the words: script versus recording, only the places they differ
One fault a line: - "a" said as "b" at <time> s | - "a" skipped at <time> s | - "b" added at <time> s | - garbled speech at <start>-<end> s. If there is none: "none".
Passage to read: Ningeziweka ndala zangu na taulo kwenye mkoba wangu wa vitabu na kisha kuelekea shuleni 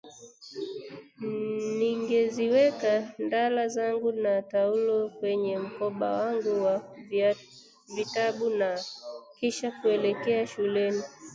none